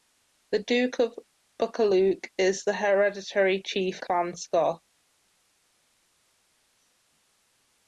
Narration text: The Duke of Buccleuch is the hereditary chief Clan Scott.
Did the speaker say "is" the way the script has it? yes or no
yes